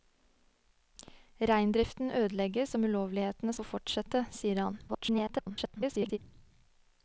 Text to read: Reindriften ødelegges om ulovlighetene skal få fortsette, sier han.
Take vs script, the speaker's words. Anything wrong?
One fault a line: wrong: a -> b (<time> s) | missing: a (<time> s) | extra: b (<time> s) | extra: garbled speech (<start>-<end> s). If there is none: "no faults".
missing: skal (3.5 s)
extra: garbled speech (4.9-6.2 s)